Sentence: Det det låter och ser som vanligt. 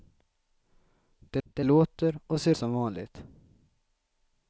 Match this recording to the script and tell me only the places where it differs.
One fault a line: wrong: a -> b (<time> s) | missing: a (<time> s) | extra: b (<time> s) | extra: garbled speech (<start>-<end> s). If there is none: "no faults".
no faults